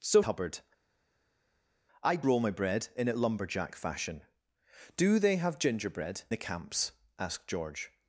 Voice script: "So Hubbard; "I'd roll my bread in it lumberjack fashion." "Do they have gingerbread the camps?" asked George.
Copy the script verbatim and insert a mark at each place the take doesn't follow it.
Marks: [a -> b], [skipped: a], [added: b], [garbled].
"So Hubbard; "I'd roll my bread in it lumberjack fashion." "Do they have gingerbread the camps?" asked George.